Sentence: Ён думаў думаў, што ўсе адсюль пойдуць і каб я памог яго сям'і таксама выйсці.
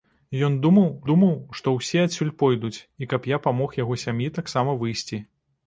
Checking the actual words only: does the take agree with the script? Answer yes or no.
yes